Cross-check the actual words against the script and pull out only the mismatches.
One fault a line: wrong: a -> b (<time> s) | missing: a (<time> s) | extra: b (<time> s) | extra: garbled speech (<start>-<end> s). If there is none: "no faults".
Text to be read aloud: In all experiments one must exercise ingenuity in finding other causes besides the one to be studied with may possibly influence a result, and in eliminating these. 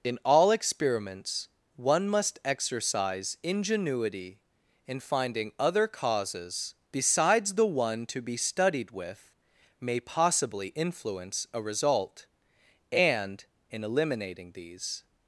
no faults